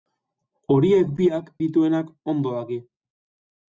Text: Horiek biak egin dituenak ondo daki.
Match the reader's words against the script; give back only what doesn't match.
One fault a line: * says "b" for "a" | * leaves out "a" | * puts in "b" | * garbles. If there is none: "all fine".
* leaves out "egin"